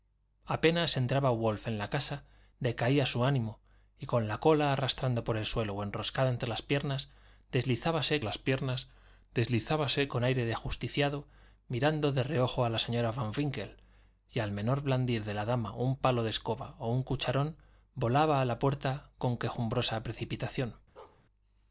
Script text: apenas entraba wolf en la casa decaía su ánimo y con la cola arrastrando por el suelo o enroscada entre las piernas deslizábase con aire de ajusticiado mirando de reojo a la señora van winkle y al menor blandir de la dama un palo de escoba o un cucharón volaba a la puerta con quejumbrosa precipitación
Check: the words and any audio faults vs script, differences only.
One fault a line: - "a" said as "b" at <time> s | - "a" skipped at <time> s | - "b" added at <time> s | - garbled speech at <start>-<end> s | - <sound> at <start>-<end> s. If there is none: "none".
- "las piernas deslizábase" added at 8.2 s
- bark at 21.0-21.2 s